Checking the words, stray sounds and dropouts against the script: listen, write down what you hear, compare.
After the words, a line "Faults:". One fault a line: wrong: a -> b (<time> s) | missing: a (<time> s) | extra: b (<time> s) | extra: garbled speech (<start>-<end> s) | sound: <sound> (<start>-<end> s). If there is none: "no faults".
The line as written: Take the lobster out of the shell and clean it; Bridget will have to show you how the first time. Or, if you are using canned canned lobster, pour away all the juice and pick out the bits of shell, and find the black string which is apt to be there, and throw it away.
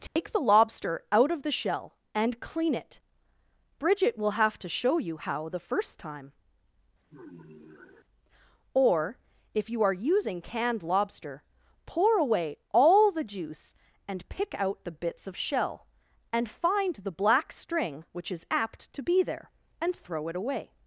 Take the lobster out of the shell and clean it; Bridget will have to show you how the first time. Or, if you are using canned lobster, pour away all the juice and pick out the bits of shell, and find the black string which is apt to be there, and throw it away.
Faults:
sound: dropout (0.1-0.2 s)
sound: sigh (7.0-8.1 s)
missing: canned (10.8 s)